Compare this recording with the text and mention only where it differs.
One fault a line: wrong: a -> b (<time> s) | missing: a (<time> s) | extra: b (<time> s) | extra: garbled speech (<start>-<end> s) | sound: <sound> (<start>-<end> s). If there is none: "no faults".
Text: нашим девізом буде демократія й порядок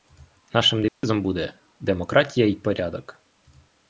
sound: dropout (0.9-1.0 s)